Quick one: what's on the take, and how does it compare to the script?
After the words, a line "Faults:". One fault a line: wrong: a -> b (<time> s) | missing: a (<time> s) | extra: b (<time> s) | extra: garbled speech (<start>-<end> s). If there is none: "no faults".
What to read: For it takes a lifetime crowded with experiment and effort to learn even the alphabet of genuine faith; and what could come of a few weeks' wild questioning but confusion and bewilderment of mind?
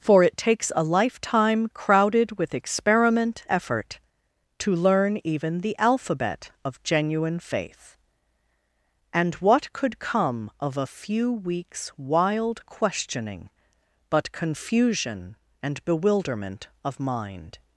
For it takes a lifetime crowded with experiment effort to learn even the alphabet of genuine faith; and what could come of a few weeks' wild questioning but confusion and bewilderment of mind?
Faults:
missing: and (3.4 s)